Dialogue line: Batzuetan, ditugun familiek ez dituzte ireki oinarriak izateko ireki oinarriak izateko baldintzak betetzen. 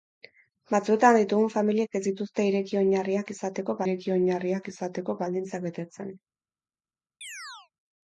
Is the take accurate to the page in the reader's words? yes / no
yes